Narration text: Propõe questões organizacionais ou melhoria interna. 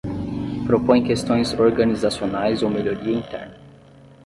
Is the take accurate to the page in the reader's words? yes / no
yes